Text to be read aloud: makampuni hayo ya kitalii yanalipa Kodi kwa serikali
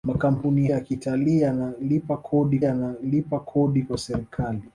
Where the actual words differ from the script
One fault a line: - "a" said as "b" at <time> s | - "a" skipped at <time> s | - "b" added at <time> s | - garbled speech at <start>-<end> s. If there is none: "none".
- "hayo" skipped at 0.7 s
- "yanalipa Kodi" added at 2.6 s